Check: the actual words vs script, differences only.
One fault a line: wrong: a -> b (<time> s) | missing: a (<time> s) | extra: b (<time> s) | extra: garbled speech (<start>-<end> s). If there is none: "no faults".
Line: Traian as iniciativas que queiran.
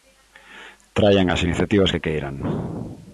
no faults